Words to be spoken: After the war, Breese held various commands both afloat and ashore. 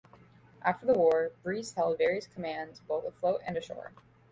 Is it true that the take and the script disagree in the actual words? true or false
false